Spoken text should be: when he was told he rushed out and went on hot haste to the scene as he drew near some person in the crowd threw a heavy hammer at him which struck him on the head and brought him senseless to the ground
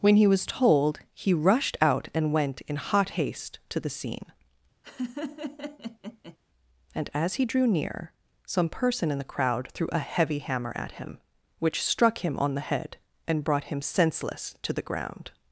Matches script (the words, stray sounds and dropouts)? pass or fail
fail